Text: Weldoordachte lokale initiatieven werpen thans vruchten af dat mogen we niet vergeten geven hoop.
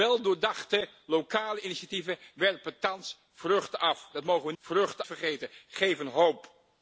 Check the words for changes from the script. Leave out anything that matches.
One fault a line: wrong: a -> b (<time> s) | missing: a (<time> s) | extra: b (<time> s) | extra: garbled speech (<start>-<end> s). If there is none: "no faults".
wrong: niet -> vruchten (4.6 s)